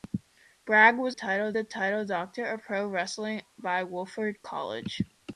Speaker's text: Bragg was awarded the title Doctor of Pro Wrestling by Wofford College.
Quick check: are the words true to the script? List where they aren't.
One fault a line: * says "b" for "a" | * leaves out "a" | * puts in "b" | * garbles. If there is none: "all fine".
* says "title" for "awarded"